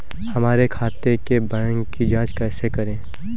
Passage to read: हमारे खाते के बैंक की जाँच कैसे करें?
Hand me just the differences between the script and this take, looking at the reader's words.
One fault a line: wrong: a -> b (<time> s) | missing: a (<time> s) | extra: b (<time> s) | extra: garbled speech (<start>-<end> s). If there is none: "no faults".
no faults